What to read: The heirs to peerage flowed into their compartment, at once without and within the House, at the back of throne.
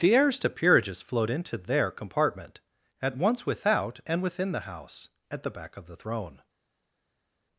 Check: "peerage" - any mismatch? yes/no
yes